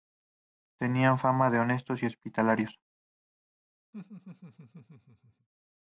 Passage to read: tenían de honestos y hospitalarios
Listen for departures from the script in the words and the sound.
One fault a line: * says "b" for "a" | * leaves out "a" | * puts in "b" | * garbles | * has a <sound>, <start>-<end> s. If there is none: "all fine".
* puts in "fama"
* has a laugh, 3.9-5.5 s